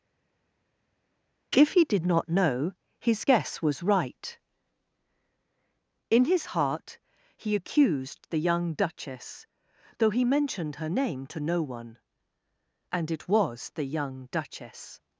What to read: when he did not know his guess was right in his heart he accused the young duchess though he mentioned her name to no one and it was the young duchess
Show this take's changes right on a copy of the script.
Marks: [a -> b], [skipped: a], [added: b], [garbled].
[when -> if] he did not know his guess was right in his heart he accused the young duchess though he mentioned her name to no one and it was the young duchess